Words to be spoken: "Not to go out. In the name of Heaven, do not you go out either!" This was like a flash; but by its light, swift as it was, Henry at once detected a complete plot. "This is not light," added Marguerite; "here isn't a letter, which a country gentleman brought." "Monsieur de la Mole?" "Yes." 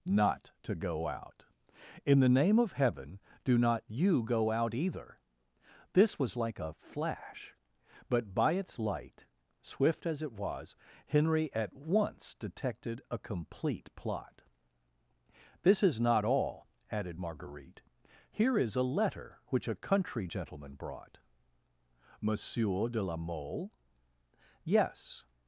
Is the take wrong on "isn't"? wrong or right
wrong